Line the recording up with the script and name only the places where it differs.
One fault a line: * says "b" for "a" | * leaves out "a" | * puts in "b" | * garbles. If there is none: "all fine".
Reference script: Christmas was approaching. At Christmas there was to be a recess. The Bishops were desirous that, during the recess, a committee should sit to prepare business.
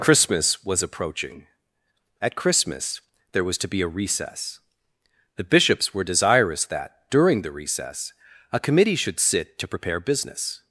all fine